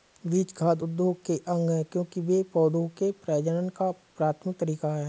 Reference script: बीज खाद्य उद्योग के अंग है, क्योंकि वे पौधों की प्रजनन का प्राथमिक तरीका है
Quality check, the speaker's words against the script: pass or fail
fail